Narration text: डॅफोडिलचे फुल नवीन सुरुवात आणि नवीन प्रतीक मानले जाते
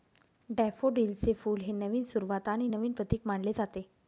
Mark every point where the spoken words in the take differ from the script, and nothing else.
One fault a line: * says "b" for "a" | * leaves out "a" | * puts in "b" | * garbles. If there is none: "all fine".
* puts in "हे"